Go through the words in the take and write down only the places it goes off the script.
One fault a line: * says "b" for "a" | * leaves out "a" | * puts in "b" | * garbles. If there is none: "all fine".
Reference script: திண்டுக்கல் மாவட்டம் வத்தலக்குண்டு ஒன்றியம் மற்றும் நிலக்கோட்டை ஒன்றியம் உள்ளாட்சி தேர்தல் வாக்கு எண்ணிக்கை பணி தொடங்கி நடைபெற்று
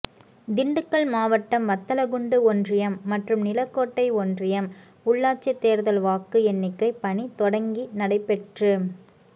all fine